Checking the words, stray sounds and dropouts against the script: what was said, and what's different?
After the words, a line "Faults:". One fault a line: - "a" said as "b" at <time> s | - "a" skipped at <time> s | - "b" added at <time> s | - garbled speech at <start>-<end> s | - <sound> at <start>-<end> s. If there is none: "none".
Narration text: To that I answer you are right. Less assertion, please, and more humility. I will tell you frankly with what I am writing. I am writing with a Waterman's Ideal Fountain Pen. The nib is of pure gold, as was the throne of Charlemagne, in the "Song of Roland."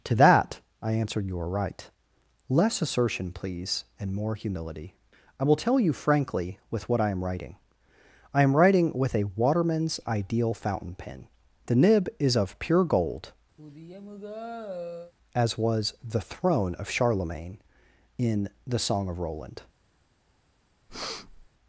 To that I answered you are right. Less assertion, please, and more humility. I will tell you frankly with what I am writing. I am writing with a Waterman's Ideal Fountain Pen. The nib is of pure gold, as was the throne of Charlemagne, in the "Song of Roland."
Faults:
- "answer" said as "answered" at 0.9 s
- sigh at 13.6-15.1 s
- breath at 20.9-21.5 s